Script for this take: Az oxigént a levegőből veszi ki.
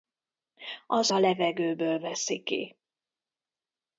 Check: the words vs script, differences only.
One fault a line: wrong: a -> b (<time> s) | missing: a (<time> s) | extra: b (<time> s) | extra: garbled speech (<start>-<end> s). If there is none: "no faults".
missing: oxigént (1.1 s)